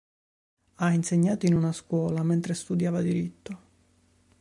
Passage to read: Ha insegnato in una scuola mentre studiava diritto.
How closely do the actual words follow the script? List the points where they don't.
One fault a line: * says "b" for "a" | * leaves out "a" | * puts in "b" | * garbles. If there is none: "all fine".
all fine